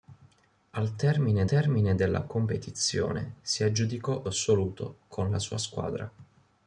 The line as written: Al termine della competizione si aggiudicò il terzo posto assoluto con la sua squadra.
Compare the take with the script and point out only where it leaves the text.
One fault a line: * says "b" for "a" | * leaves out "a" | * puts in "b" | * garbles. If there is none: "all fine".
* puts in "termine"
* leaves out "il terzo posto"